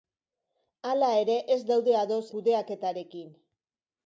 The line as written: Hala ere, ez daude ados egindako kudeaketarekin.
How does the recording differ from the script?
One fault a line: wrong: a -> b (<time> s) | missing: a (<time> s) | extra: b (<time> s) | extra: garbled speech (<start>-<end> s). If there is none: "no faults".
missing: egindako (2.2 s)